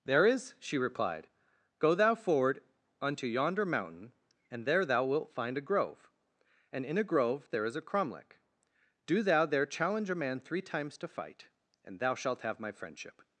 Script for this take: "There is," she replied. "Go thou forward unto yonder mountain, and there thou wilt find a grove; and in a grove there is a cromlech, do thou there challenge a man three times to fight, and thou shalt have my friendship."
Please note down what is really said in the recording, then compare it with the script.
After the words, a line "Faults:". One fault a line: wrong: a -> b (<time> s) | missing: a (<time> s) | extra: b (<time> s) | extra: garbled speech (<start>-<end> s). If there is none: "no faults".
"There is," she replied. "Go thou forward unto yonder mountain, and there thou wilt find a grove; and in a grove there is a cromlech, do thou there challenge a man three times to fight, and thou shalt have my friendship."
Faults:
no faults